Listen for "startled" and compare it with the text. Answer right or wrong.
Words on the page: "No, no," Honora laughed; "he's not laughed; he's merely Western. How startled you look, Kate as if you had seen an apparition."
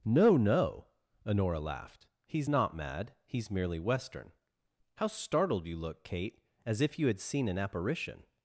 right